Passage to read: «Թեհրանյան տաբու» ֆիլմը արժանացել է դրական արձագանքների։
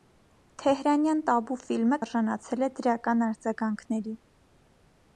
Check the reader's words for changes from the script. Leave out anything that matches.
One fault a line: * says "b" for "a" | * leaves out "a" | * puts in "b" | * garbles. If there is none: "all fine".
all fine